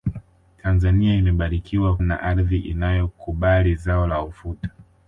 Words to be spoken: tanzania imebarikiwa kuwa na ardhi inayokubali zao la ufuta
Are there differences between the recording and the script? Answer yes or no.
yes